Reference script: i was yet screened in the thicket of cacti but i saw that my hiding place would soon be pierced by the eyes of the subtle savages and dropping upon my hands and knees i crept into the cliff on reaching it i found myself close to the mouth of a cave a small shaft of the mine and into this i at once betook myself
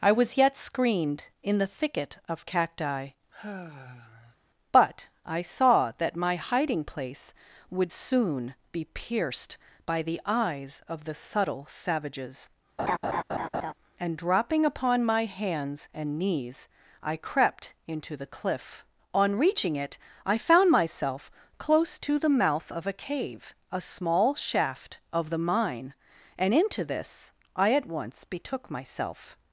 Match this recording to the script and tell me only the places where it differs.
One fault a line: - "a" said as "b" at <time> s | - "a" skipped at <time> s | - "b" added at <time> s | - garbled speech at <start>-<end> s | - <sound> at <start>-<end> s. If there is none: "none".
- sigh at 3.3-4.4 s
- laugh at 12.8-13.7 s